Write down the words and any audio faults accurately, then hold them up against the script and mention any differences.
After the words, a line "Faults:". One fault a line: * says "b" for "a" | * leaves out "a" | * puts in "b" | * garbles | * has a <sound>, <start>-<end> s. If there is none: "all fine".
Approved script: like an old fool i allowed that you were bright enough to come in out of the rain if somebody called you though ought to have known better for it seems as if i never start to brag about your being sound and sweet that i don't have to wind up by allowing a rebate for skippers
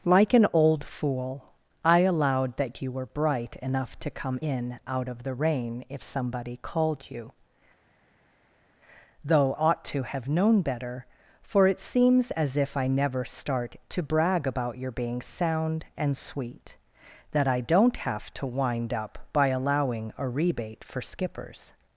like an old fool i allowed that you were bright enough to come in out of the rain if somebody called you though ought to have known better for it seems as if i never start to brag about your being sound and sweet that i don't have to wind up by allowing a rebate for skippers
Faults:
all fine